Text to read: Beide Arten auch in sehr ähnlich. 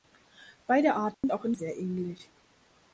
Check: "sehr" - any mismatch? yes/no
no